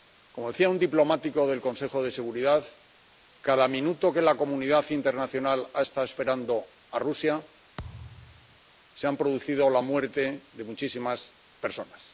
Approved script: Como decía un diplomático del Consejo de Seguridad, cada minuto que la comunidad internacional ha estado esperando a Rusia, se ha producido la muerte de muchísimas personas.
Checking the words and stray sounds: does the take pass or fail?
fail